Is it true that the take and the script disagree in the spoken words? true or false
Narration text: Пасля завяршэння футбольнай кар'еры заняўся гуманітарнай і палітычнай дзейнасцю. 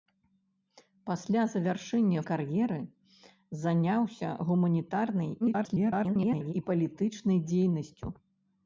true